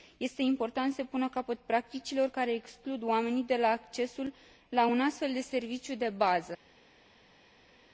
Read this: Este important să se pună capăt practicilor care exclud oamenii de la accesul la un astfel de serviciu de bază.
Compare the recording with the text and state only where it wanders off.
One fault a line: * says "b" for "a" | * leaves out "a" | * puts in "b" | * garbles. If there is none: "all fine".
all fine